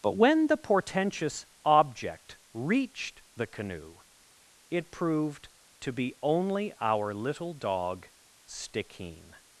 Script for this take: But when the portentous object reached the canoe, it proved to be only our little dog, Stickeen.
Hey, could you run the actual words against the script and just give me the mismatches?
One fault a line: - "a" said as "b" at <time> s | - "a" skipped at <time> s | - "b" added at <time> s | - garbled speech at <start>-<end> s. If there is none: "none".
none